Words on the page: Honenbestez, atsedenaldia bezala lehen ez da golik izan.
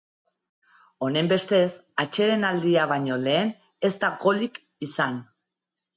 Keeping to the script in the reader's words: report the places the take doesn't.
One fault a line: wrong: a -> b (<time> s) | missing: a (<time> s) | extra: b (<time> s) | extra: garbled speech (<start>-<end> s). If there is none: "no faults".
wrong: bezala -> baino (2.9 s)